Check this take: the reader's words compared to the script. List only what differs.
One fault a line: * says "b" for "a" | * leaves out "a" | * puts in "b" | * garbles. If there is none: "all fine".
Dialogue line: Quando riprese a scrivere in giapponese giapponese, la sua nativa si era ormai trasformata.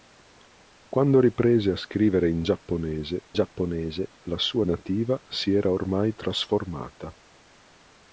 all fine